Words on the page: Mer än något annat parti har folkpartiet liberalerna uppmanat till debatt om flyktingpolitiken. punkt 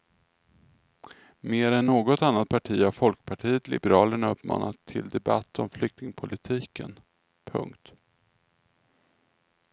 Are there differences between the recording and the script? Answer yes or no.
no